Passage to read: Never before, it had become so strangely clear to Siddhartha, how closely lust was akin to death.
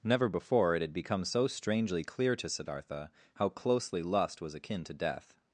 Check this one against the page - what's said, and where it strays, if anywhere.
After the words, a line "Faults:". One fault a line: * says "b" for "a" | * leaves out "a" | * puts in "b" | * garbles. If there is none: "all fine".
Never before, it had become so strangely clear to Siddhartha, how closely lust was akin to death.
Faults:
all fine